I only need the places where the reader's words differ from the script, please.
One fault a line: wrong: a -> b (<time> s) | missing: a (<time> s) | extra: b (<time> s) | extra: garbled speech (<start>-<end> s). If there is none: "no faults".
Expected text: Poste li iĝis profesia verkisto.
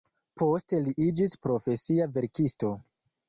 no faults